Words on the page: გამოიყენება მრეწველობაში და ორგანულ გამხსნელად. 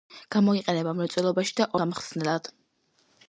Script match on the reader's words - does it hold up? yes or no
no